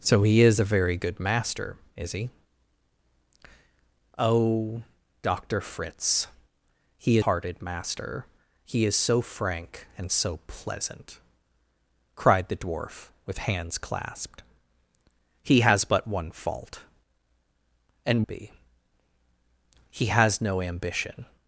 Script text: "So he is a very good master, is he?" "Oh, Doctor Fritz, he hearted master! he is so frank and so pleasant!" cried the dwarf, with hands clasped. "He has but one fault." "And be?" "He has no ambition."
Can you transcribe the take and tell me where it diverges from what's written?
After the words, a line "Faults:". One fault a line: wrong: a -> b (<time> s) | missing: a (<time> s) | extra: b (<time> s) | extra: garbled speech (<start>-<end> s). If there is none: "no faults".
"So he is a very good master, is he?" "Oh, Doctor Fritz, he hearted master! he is so frank and so pleasant!" cried the dwarf, with hands clasped. "He has but one fault." "And be?" "He has no ambition."
Faults:
no faults